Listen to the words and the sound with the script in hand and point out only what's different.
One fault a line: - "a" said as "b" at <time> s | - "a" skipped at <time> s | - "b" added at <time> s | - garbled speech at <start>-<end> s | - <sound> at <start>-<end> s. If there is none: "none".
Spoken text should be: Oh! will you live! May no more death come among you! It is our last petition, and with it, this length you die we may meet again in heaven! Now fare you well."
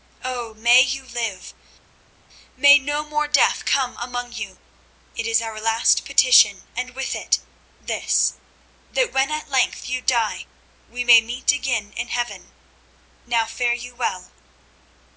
- "will" said as "may" at 0.6 s
- "that when at" added at 8.9 s